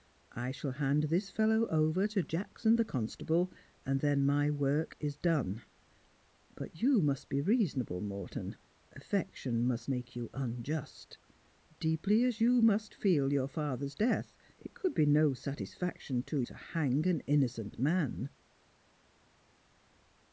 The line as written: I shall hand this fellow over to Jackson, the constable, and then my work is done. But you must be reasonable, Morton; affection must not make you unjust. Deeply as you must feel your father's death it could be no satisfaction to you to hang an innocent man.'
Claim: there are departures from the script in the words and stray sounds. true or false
true